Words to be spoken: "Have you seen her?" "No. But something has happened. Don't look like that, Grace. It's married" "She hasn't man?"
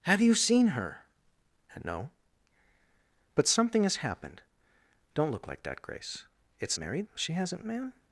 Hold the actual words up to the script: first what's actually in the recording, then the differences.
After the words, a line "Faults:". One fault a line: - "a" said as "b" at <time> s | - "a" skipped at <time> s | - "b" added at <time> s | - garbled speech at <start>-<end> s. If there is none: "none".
"Have you seen her?" "No. But something has happened. Don't look like that, Grace. It's married" "She hasn't man?"
Faults:
none